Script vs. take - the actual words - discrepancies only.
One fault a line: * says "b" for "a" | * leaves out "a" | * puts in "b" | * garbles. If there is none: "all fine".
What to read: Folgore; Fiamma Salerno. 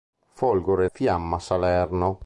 all fine